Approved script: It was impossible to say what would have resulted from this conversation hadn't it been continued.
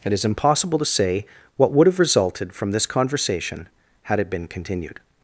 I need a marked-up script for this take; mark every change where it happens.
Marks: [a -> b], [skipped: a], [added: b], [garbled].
It [was -> is] impossible to say what would have resulted from this conversation [hadn't -> had] it been continued.